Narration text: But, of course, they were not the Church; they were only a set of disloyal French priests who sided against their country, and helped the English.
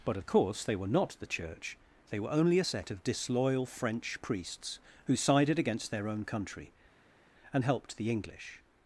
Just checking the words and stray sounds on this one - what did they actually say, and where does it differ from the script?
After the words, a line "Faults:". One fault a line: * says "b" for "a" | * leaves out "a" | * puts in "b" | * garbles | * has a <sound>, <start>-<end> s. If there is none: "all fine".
But, of course, they were not the Church; they were only a set of disloyal French priests who sided against their own country, and helped the English.
Faults:
* puts in "own"